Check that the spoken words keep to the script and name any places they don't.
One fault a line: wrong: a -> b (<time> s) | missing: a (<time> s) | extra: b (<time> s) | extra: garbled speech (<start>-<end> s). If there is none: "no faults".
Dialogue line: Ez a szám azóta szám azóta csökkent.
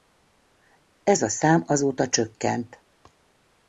missing: szám azóta (2.1 s)